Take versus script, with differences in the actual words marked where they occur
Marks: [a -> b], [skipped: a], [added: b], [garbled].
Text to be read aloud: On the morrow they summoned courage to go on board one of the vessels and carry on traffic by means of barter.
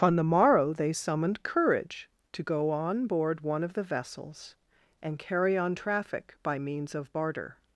On the morrow they summoned courage to go on board one of the vessels and carry on traffic by means of barter.